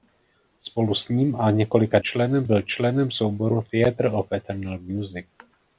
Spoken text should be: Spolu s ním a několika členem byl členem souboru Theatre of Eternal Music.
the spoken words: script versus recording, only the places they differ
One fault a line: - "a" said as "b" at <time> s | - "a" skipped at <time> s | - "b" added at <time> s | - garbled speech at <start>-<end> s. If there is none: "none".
none